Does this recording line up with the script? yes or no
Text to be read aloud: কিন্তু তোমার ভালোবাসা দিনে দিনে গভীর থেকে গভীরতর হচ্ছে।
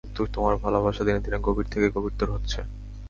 yes